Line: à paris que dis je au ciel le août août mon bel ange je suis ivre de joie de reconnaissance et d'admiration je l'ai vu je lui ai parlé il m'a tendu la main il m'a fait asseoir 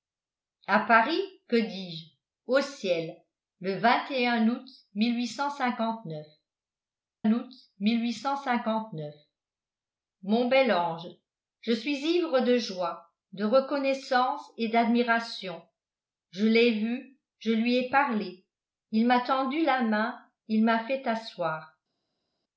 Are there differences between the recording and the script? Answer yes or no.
no